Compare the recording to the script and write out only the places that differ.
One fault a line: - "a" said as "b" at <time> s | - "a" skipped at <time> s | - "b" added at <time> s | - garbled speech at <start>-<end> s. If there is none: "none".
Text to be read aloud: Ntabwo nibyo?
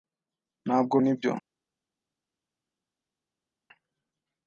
none